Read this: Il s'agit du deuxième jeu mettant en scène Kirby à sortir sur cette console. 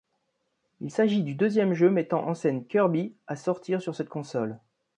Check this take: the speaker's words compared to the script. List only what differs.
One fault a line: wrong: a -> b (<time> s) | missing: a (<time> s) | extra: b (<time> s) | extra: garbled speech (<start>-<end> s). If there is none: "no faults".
no faults